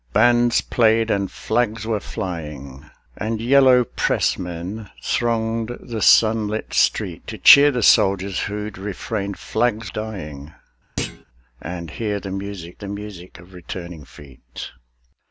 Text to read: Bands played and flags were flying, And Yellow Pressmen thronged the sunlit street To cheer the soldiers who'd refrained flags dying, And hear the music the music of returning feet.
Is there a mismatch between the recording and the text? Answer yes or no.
no